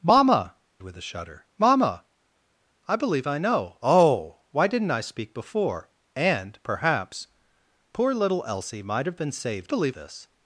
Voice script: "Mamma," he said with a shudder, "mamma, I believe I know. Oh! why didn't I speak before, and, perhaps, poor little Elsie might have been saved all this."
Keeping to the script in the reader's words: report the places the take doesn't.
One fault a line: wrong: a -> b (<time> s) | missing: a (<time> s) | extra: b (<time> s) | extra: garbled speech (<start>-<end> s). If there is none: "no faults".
missing: he said (0.6 s)
wrong: all -> believe (9.7 s)